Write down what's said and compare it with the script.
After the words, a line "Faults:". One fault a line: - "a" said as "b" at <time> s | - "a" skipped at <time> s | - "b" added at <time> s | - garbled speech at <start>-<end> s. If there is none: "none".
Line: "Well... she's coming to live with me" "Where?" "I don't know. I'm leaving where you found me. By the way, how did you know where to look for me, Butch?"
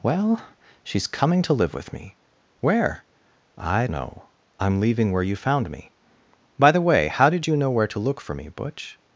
"Well... she's coming to live with me" "Where?" "I know. I'm leaving where you found me. By the way, how did you know where to look for me, Butch?"
Faults:
- "don't" skipped at 3.9 s